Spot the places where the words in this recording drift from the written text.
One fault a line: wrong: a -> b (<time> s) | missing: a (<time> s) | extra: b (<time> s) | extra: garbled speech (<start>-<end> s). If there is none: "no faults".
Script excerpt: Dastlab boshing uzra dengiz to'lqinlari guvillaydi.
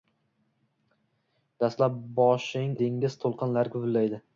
missing: uzra (2.8 s)